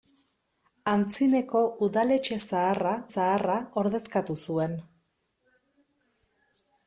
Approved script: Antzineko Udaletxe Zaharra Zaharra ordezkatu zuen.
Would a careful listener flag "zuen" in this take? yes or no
no